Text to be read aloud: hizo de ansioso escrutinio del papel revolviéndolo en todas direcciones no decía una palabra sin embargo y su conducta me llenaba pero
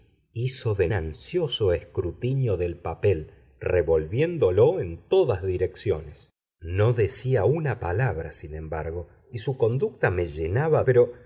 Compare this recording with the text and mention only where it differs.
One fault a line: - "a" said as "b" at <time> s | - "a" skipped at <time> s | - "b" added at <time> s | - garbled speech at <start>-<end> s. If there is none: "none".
none